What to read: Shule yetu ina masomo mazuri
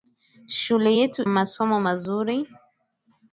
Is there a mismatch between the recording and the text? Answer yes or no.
yes